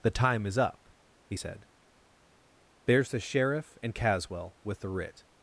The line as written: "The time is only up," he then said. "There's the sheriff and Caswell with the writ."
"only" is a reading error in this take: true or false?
true